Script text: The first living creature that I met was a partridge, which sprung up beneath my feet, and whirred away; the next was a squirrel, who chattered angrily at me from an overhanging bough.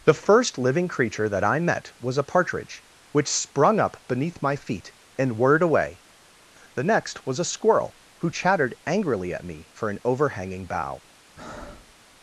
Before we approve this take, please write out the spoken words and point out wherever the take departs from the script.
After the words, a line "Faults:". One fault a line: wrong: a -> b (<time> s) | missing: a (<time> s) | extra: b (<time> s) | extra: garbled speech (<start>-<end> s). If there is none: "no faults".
The first living creature that I met was a partridge, which sprung up beneath my feet, and whirred away; the next was a squirrel, who chattered angrily at me for an overhanging bough.
Faults:
wrong: from -> for (9.7 s)